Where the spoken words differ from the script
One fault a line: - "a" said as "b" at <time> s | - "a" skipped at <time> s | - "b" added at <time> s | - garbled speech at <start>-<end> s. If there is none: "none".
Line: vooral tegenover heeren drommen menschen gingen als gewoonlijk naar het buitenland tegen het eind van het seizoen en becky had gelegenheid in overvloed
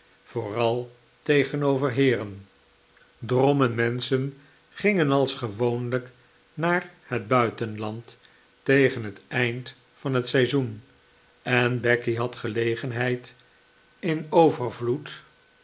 none